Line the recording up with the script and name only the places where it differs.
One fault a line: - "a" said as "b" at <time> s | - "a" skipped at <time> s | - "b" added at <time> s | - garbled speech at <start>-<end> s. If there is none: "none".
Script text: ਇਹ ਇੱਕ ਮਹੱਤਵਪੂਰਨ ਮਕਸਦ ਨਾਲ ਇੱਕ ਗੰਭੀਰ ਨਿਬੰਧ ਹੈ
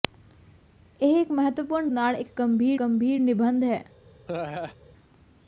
- "ਮਕਸਦ" skipped at 1.9 s
- "ਗੰਭੀਰ" added at 2.8 s